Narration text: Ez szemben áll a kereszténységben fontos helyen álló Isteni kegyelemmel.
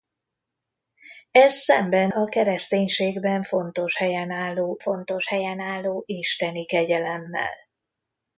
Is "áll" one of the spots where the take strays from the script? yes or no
yes